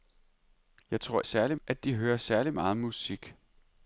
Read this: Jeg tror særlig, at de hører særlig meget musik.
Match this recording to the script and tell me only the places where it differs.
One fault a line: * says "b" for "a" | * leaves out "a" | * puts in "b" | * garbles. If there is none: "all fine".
all fine